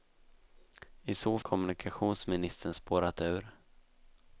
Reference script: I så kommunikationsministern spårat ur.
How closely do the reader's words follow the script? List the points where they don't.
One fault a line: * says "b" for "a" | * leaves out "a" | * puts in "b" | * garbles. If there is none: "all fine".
all fine